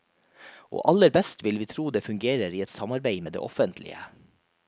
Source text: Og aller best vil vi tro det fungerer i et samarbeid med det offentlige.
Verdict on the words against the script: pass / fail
pass